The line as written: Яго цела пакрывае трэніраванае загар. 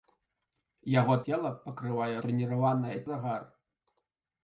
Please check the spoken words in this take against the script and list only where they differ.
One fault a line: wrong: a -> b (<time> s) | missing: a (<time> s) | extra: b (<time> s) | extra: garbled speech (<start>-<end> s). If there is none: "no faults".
no faults